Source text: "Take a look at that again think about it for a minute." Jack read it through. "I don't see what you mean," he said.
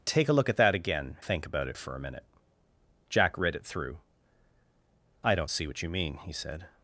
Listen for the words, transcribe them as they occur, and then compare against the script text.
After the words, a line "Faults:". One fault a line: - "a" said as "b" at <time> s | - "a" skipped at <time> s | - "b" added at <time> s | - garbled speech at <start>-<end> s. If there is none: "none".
"Take a look at that again think about it for a minute." Jack read it through. "I don't see what you mean," he said.
Faults:
none